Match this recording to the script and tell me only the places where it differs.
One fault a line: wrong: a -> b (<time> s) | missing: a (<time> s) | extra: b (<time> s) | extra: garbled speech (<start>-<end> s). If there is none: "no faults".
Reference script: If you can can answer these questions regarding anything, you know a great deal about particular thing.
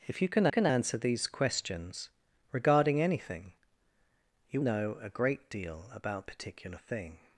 no faults